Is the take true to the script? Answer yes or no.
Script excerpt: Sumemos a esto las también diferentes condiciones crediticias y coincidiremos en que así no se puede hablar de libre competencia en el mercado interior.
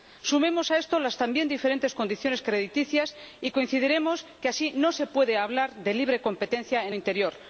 no